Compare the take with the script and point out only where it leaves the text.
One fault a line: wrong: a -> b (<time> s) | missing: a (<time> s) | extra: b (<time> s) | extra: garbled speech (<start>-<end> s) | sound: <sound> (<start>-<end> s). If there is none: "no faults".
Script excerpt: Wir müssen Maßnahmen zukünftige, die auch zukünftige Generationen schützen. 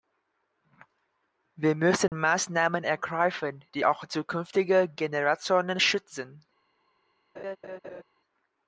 sound: dropout (2.1-2.1 s)
wrong: zukünftige -> ergreifen (2.8 s)
sound: laugh (7.4-8.0 s)